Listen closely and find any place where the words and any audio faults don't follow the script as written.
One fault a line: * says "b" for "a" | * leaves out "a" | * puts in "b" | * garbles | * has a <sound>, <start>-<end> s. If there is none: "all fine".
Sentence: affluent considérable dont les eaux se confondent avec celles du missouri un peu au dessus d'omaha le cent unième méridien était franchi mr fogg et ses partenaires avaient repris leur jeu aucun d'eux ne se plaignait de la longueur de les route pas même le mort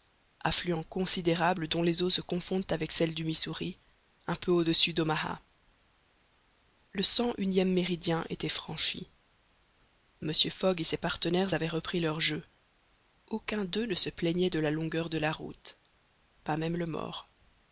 * says "la" for "les"